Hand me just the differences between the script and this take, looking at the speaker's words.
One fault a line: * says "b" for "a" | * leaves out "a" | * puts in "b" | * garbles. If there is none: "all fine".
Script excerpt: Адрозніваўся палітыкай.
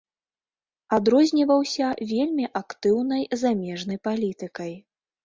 * puts in "вельмі актыўнай замежнай"